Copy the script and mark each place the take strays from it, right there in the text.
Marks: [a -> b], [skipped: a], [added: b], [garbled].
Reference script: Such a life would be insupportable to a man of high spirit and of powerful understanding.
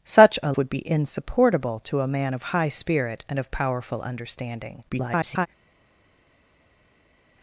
Such a [skipped: life] would be insupportable to a man of high spirit and of powerful understanding. [garbled]